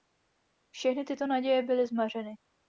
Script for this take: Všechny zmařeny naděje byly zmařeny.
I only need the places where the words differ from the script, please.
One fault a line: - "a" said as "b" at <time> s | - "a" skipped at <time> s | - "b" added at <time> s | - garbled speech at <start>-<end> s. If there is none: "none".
- "zmařeny" said as "tyto" at 1.0 s